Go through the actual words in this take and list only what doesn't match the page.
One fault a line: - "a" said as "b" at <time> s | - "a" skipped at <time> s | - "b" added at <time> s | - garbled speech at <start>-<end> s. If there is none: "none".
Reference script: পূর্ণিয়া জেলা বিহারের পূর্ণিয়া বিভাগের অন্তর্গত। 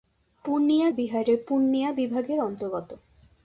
- "জেলা" skipped at 0.9 s